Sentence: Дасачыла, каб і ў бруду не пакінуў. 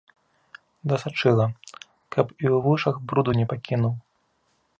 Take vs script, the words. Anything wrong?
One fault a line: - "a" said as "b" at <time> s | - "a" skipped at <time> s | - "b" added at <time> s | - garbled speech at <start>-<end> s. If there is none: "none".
- "вушах" added at 2.7 s